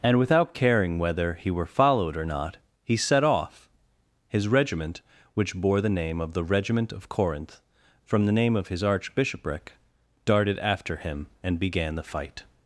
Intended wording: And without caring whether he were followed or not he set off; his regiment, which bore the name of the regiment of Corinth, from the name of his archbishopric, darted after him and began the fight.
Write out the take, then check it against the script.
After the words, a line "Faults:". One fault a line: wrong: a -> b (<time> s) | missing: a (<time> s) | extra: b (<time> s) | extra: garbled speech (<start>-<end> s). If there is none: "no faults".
And without caring whether he were followed or not he set off; his regiment, which bore the name of the regiment of Corinth, from the name of his archbishopric, darted after him and began the fight.
Faults:
no faults